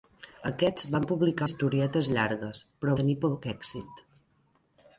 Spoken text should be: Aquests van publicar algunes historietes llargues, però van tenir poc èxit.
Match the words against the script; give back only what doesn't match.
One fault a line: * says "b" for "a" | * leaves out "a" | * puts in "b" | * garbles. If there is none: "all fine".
* leaves out "algunes"
* leaves out "van"